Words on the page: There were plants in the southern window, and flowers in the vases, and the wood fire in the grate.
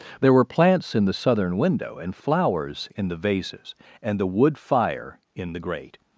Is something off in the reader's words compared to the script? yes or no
no